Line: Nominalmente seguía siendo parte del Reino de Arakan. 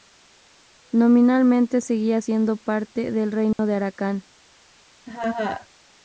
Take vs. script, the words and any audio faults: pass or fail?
fail